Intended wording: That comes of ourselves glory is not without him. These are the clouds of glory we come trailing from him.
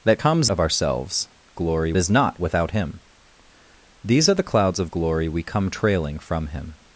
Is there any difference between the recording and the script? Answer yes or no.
no